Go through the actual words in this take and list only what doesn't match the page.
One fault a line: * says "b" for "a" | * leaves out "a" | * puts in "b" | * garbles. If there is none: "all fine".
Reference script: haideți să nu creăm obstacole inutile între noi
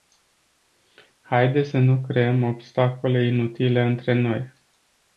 all fine